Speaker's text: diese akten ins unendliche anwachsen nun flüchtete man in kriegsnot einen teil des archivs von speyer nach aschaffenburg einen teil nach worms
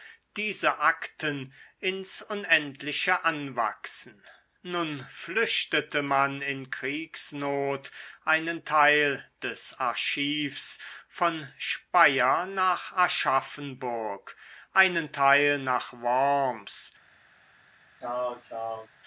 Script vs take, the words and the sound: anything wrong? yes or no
yes